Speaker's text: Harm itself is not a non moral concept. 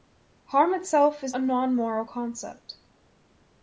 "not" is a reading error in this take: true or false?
true